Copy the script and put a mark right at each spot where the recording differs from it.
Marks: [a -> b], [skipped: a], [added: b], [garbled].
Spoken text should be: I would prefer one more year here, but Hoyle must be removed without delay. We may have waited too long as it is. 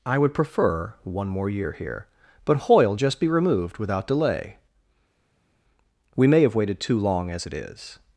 I would prefer one more year here, but Hoyle [must -> just] be removed without delay. We may have waited too long as it is.